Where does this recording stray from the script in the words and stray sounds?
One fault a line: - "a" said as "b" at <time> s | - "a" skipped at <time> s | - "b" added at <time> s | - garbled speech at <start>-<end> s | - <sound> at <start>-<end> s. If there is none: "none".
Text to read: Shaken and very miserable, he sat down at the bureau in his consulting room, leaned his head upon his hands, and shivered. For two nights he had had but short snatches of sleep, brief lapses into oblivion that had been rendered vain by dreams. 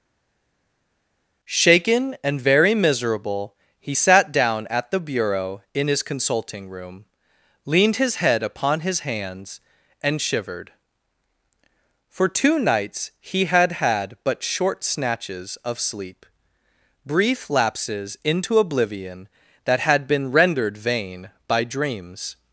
none